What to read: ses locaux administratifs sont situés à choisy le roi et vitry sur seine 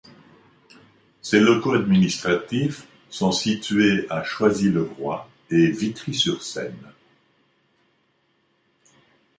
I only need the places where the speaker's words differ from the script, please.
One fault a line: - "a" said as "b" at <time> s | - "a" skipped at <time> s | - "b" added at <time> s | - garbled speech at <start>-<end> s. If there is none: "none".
none